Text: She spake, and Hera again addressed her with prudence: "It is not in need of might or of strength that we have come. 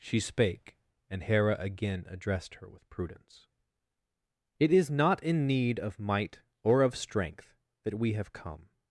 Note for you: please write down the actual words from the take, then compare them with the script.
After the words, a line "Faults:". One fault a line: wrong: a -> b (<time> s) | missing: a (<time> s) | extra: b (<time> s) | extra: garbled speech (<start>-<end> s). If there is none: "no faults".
She spake, and Hera again addressed her with prudence: "It is not in need of might or of strength that we have come.
Faults:
no faults